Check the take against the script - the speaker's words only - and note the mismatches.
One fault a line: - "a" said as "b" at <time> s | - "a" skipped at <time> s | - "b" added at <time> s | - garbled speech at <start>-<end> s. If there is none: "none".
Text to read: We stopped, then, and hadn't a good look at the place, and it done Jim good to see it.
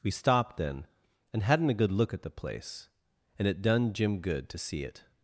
none